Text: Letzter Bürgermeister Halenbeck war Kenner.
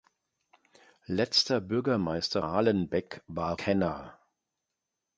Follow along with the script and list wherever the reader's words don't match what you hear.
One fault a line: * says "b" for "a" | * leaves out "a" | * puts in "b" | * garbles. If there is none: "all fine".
all fine